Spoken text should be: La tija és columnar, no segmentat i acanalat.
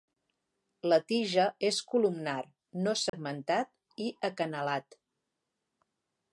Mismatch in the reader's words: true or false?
false